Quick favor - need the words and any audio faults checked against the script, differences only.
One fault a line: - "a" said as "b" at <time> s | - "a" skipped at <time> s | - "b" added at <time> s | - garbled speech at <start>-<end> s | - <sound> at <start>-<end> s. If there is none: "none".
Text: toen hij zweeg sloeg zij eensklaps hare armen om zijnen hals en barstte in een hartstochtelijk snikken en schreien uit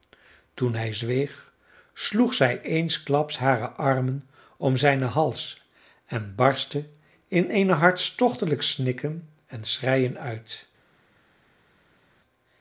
none